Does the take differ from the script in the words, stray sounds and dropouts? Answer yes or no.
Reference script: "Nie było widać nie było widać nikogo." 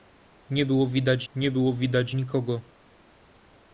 no